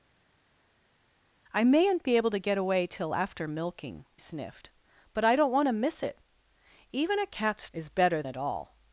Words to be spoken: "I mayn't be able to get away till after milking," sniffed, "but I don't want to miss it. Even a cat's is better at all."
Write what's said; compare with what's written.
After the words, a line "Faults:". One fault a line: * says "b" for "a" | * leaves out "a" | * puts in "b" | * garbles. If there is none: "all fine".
"I mayn't be able to get away till after milking," sniffed, "but I don't want to miss it. Even a cat's is better at all."
Faults:
all fine